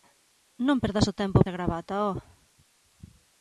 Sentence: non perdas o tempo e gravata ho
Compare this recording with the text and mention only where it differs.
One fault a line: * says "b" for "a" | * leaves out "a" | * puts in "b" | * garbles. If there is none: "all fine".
all fine